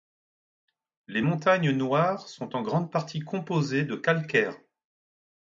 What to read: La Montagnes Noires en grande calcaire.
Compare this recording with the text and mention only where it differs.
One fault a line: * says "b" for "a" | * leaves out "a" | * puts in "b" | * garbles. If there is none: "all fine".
* says "Les" for "La"
* puts in "sont"
* puts in "partie composées de"